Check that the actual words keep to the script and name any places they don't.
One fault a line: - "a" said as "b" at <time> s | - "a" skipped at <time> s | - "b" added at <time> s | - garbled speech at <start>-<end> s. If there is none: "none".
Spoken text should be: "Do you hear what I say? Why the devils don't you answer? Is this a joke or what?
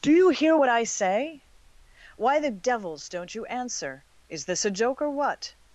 none